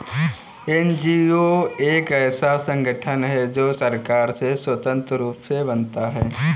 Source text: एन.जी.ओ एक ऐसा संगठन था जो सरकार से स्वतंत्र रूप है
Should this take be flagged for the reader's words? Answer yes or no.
yes